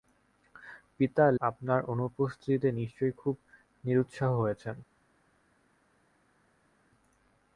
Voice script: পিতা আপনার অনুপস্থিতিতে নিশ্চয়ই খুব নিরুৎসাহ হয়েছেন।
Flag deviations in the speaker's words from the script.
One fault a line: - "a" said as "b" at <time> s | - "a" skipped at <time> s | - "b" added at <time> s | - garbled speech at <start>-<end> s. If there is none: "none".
none